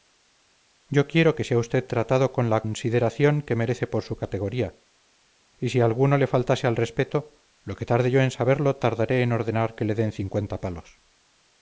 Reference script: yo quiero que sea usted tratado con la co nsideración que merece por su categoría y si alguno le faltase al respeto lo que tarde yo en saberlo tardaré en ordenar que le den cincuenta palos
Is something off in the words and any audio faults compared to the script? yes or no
yes